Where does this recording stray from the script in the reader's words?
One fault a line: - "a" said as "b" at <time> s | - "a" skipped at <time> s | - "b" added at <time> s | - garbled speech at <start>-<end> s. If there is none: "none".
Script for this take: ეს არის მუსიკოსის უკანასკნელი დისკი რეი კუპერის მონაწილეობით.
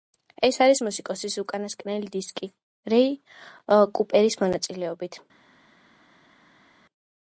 none